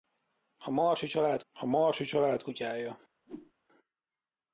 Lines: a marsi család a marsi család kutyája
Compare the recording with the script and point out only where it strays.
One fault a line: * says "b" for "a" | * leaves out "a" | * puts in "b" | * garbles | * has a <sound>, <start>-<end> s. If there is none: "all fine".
* has a whoosh, 3.3-3.5 s